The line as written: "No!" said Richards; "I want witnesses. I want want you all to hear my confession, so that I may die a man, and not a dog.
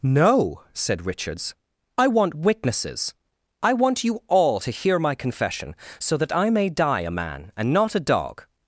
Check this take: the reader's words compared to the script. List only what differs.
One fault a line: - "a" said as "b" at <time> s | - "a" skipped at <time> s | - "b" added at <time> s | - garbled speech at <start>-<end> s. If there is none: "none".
- "want" skipped at 4.0 s